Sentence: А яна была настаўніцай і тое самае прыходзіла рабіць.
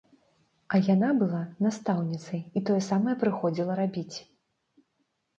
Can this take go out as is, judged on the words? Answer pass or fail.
pass